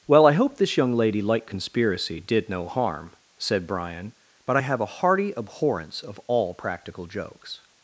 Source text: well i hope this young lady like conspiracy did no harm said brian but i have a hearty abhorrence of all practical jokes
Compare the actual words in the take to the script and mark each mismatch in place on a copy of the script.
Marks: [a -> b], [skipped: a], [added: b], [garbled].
well i hope this young lady like conspiracy did no harm said brian but i have a hearty abhorrence of all practical jokes